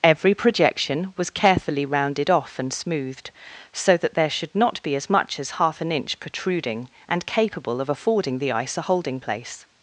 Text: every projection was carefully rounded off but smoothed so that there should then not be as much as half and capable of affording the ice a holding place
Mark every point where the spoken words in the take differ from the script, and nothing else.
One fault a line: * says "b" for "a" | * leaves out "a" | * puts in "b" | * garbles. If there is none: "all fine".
* says "and" for "but"
* leaves out "then"
* puts in "an inch protruding"